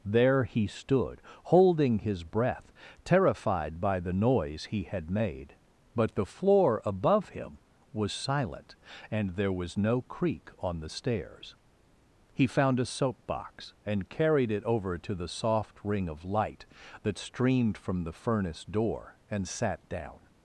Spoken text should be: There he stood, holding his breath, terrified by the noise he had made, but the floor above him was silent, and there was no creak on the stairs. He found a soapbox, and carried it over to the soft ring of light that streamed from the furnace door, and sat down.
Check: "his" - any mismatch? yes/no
no